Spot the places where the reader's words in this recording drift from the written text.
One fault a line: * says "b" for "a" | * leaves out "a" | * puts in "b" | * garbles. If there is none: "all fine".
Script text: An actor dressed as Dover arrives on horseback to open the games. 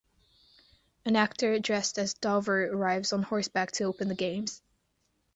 all fine